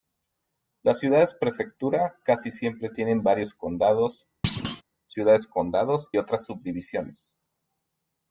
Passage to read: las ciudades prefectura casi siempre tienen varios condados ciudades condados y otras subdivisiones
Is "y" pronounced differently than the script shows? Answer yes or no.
yes